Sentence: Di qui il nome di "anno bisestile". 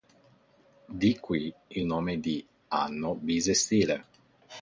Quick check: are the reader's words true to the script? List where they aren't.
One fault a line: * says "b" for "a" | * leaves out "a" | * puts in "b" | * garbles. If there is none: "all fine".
all fine